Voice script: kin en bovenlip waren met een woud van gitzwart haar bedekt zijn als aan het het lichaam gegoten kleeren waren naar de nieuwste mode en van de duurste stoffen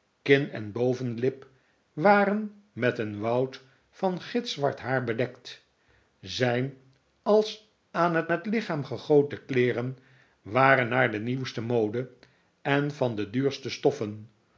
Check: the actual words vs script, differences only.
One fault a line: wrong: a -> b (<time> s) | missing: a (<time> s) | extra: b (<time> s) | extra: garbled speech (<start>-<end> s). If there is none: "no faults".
no faults